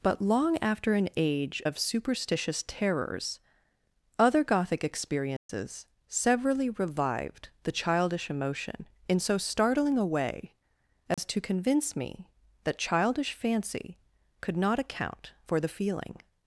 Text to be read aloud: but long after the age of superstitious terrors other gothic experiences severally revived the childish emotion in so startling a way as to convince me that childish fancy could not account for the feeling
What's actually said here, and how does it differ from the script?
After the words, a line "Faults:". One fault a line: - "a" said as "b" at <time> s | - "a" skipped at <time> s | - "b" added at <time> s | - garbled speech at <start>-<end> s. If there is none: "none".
but long after an age of superstitious terrors other gothic experiences severally revived the childish emotion in so startling a way as to convince me that childish fancy could not account for the feeling
Faults:
- "the" said as "an" at 0.9 s